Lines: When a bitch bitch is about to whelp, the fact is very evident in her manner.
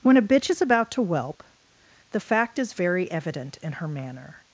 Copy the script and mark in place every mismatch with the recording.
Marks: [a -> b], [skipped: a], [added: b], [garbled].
When a bitch [skipped: bitch] is about to whelp, the fact is very evident in her manner.